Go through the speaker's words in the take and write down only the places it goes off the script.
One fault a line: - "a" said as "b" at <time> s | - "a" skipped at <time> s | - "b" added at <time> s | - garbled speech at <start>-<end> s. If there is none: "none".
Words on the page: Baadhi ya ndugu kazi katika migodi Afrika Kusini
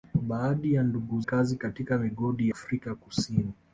none